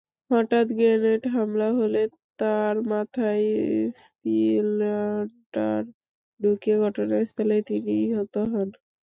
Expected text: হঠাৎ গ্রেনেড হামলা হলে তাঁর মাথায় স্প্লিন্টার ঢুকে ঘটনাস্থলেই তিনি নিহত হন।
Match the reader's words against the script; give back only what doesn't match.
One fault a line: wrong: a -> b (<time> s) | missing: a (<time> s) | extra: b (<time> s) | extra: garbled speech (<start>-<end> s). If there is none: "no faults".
no faults